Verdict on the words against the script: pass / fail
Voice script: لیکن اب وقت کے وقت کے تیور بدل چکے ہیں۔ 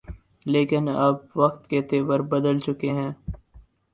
fail